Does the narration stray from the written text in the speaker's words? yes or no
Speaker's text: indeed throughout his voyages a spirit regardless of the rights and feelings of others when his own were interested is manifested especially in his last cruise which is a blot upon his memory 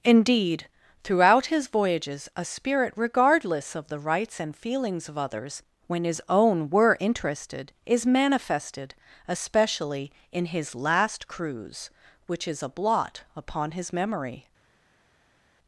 no